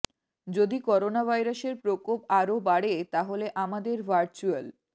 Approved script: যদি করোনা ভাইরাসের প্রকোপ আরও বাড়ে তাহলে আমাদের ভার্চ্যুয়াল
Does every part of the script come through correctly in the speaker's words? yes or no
yes